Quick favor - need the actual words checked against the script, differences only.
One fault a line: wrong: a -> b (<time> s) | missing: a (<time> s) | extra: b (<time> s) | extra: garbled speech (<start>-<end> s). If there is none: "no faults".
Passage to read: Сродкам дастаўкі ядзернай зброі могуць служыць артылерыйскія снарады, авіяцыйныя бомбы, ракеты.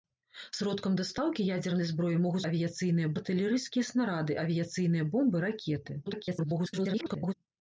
wrong: служыць -> авіяцыйныя (2.5 s)
extra: garbled speech (6.1-7.3 s)